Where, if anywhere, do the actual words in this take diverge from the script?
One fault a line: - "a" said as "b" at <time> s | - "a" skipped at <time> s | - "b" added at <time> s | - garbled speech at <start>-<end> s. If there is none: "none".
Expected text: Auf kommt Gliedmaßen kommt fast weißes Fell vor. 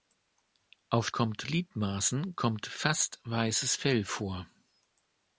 none